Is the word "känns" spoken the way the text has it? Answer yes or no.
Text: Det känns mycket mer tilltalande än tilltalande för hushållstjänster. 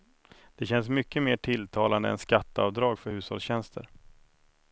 yes